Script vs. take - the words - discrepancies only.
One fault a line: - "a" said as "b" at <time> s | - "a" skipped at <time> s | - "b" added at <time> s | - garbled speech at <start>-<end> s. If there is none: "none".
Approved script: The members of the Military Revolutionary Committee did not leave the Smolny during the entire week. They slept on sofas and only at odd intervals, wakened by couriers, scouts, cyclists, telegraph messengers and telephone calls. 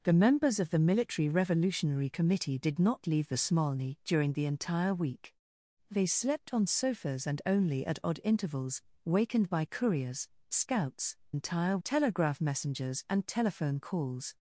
- "cyclists" said as "entire" at 11.3 s